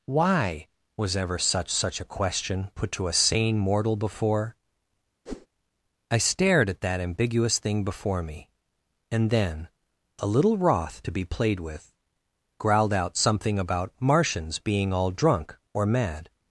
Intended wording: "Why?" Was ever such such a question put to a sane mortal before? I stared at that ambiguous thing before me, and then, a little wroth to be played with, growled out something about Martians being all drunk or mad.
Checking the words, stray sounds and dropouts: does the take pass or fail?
fail